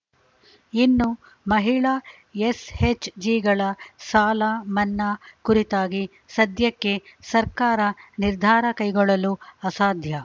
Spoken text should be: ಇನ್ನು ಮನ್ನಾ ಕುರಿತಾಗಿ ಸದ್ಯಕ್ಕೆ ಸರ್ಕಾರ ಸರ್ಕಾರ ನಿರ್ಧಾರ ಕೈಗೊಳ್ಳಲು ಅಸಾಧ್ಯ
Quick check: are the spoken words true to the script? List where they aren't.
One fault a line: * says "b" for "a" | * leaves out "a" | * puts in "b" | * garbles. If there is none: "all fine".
* puts in "ಮಹಿಳಾ ಎಸ್‌ಎಚ್‌ಜಿಗಳ ಸಾಲ"
* leaves out "ಸರ್ಕಾರ"